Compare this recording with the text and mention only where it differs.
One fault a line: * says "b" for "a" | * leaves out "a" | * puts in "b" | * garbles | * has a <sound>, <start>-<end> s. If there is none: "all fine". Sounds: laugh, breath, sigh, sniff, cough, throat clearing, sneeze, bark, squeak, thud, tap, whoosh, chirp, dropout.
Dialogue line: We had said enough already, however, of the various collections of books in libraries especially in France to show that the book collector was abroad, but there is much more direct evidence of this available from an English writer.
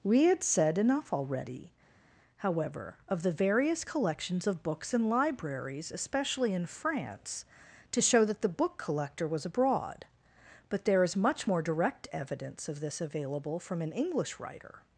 all fine